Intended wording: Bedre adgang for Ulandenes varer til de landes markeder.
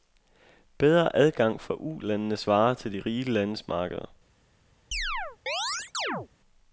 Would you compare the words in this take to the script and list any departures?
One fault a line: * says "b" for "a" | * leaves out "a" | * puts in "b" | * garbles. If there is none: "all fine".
* puts in "rige"